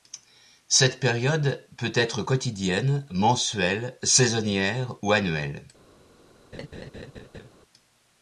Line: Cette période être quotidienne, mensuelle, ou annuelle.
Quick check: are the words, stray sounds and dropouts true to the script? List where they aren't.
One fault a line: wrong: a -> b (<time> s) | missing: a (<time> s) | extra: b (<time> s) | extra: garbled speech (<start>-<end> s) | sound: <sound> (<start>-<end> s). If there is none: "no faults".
extra: peut (1.8 s)
extra: saisonnière (4.0 s)
sound: laugh (6.5-7.5 s)